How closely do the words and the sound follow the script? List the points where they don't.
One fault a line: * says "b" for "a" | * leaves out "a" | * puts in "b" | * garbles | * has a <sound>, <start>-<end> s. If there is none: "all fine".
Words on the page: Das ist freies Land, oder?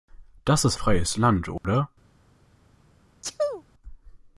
* has a dropout, 1.6-1.6 s
* has a sneeze, 3.2-3.6 s